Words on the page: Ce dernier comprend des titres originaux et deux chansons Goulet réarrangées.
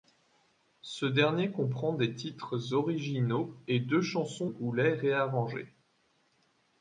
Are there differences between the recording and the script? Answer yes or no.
no